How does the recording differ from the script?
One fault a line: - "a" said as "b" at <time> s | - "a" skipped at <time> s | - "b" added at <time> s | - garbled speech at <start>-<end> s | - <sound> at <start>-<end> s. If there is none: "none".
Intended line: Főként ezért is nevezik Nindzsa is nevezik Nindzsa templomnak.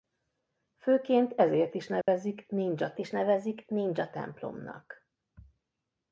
- dropout at 2.0-2.1 s